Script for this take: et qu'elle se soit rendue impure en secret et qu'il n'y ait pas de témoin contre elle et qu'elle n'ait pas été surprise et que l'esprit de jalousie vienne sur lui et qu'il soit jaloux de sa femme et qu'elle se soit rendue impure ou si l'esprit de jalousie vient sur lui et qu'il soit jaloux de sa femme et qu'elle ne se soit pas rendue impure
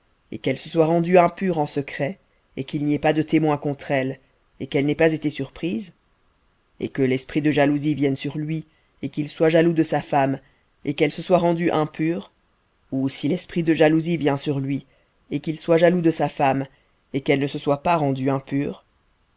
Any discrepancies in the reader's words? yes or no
no